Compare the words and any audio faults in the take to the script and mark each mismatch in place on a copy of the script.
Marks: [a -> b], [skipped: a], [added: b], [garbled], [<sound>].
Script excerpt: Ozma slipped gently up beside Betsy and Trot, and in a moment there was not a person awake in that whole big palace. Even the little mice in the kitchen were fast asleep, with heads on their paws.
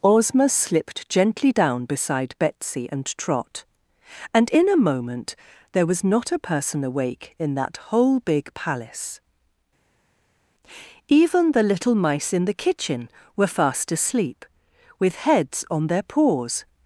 Ozma slipped gently [up -> down] beside Betsy and Trot, and in a moment there was not a person awake in that whole big palace. Even the little mice in the kitchen were fast asleep, with heads on their paws.